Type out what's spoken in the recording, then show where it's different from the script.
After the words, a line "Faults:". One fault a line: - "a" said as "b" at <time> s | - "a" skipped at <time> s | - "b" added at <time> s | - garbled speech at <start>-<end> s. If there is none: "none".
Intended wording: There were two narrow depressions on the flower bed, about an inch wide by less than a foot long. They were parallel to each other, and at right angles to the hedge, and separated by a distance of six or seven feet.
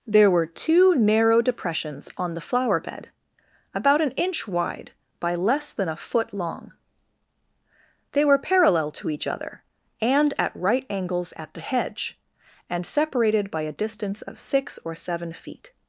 There were two narrow depressions on the flower bed, about an inch wide by less than a foot long. They were parallel to each other, and at right angles at the hedge, and separated by a distance of six or seven feet.
Faults:
- "to" said as "at" at 11.4 s